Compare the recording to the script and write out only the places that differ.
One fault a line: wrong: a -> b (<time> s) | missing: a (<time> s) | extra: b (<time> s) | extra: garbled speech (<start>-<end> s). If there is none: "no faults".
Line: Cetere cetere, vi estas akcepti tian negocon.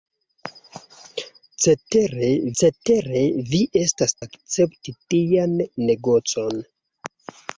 no faults